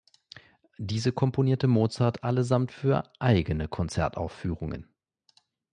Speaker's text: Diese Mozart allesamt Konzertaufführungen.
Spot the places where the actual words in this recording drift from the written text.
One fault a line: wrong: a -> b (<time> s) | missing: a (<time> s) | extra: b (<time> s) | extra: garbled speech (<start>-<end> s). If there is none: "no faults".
extra: komponierte (1.1 s)
extra: für eigene (2.7 s)